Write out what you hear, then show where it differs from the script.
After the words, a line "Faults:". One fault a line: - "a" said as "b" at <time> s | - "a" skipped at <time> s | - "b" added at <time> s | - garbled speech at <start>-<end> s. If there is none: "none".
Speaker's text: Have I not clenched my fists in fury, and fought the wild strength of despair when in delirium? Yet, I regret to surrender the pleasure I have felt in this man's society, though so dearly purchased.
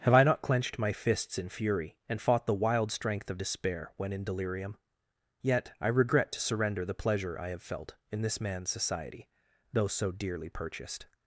Have I not clenched my fists in fury, and fought the wild strength of despair when in delirium? Yet, I regret to surrender the pleasure I have felt in this man's society, though so dearly purchased.
Faults:
none